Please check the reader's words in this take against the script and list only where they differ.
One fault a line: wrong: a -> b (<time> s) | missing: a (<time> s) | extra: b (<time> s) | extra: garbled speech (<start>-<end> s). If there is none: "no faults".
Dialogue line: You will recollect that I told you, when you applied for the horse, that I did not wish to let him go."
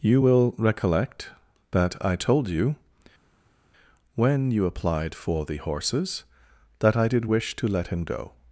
wrong: horse -> horses (5.6 s)
missing: not (7.3 s)